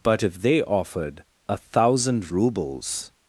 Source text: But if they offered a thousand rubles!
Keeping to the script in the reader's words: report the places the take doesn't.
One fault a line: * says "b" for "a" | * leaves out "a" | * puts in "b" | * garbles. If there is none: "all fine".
all fine